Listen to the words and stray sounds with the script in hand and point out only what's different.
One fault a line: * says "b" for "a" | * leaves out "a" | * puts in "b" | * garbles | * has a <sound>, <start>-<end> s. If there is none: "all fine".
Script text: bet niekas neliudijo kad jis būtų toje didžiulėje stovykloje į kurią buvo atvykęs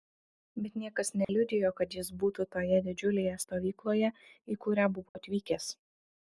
* has a dropout, 1.2-1.3 s
* has a dropout, 5.1-5.1 s